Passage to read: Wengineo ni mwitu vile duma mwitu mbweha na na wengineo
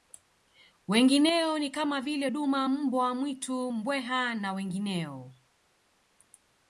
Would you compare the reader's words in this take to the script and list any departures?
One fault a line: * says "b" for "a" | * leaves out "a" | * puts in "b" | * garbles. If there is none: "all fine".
* says "kama" for "mwitu"
* puts in "mbwa"
* leaves out "na"